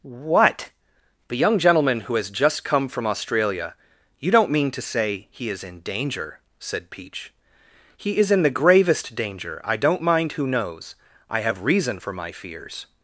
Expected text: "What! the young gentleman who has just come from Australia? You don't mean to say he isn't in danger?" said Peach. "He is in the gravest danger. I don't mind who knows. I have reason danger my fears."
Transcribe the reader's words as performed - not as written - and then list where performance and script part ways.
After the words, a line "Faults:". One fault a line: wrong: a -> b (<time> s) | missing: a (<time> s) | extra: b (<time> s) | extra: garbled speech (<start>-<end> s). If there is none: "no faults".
"What! the young gentleman who has just come from Australia? You don't mean to say he is in danger?" said Peach. "He is in the gravest danger. I don't mind who knows. I have reason for my fears."
Faults:
wrong: isn't -> is (5.5 s)
wrong: danger -> for (12.0 s)